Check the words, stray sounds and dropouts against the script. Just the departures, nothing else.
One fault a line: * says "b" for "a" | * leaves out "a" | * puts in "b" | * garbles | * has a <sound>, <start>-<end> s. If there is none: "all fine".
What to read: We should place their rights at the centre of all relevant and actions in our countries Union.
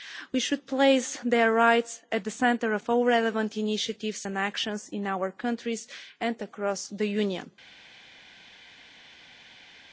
* puts in "initiatives"
* puts in "and across the"